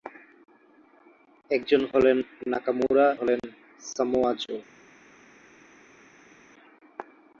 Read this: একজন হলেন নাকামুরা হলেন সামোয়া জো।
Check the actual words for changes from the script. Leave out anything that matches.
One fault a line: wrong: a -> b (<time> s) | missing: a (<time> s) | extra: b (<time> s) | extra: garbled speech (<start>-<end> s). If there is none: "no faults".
no faults